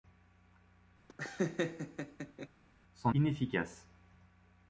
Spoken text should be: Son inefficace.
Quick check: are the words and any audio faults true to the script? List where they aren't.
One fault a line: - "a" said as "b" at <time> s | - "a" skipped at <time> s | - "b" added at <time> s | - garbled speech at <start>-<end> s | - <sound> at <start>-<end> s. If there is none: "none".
- laugh at 1.1-2.5 s